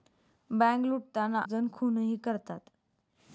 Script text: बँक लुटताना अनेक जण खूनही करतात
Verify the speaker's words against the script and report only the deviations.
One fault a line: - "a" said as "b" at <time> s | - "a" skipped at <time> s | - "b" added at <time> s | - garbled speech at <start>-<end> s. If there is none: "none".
- "अनेक" skipped at 1.4 s